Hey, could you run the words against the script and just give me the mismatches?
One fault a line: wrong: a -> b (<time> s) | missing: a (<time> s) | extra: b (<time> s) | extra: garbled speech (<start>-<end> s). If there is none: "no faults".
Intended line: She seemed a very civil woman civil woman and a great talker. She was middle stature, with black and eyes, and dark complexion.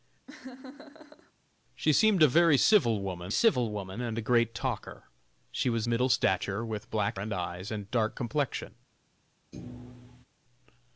no faults